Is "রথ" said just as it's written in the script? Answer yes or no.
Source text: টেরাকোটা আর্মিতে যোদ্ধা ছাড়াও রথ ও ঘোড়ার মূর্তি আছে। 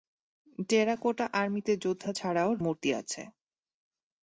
no